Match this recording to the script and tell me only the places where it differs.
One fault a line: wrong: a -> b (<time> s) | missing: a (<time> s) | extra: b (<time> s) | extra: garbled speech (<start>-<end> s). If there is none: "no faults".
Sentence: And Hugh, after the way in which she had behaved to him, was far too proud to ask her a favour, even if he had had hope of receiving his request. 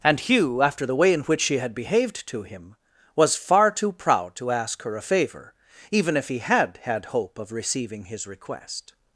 no faults